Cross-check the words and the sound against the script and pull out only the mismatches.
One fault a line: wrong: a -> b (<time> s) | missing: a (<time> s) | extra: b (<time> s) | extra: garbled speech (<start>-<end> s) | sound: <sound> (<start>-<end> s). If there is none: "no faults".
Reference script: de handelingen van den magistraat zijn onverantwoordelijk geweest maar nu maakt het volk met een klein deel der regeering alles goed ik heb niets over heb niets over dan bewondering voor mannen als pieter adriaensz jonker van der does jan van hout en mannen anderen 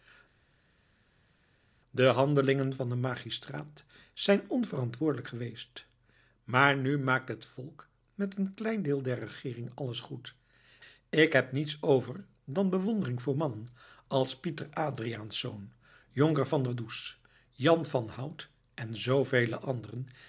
missing: heb niets over (12.2 s)
wrong: mannen -> zoovele (19.0 s)